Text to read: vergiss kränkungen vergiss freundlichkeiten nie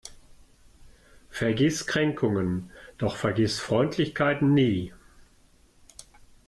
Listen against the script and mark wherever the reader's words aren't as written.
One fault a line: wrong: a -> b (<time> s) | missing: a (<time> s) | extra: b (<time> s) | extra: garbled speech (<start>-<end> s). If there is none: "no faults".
extra: doch (3.0 s)